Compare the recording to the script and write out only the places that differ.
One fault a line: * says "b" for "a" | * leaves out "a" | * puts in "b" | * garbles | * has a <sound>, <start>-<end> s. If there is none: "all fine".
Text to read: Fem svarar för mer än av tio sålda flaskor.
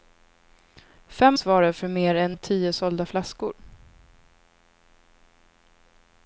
all fine